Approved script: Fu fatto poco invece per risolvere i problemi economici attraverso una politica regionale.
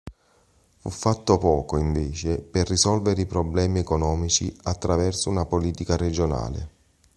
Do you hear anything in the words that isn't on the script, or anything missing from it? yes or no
no